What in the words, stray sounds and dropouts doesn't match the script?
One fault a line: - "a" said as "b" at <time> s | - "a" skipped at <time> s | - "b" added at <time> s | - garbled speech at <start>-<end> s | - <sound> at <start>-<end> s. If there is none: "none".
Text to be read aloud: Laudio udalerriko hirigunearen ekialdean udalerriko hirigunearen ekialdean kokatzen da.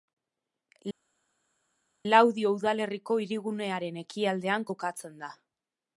- "udalerriko hirigunearen ekialdean" skipped at 4.7 s